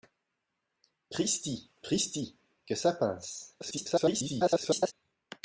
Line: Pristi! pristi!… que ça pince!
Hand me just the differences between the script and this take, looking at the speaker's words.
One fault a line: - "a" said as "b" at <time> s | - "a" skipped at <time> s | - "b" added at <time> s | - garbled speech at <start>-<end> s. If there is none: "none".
- garbled speech at 3.6-4.9 s